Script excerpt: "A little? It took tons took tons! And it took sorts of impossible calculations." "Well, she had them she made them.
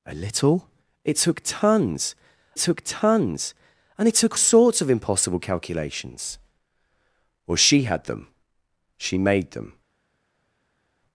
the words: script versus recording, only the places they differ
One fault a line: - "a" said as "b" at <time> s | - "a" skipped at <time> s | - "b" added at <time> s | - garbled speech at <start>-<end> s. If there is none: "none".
none